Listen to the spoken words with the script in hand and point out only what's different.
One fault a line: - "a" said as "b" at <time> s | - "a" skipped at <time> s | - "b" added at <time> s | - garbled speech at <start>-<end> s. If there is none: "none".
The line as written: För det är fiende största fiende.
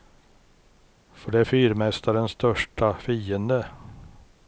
- "fiende" said as "fyrmästarens" at 1.4 s